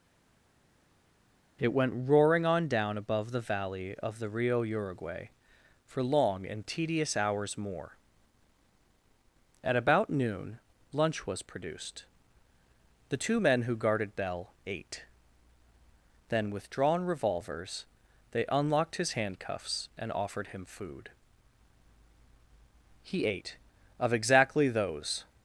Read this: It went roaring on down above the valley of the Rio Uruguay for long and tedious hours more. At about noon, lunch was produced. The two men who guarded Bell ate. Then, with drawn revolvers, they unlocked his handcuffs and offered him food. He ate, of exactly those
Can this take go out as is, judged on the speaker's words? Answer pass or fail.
pass